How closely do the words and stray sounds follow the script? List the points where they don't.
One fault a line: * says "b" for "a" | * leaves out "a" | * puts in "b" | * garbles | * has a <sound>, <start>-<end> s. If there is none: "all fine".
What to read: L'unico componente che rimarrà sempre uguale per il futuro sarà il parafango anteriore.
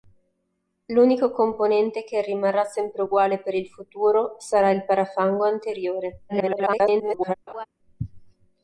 * garbles
* has a laugh, 7.5-7.7 s